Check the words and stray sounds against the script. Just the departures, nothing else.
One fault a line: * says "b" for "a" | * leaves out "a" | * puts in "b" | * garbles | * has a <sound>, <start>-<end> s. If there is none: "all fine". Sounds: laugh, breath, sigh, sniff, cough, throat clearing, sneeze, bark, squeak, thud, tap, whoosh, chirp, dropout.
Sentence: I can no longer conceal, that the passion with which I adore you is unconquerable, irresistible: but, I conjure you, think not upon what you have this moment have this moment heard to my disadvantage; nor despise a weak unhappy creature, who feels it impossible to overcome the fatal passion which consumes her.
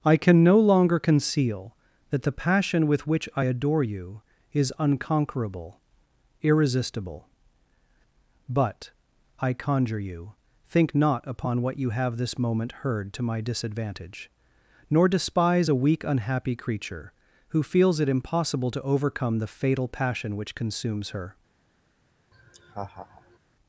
* leaves out "have this moment"
* has a laugh, 22.3-23.4 s